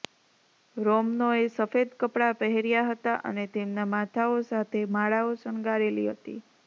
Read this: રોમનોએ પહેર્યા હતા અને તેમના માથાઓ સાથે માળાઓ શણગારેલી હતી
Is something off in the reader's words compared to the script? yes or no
yes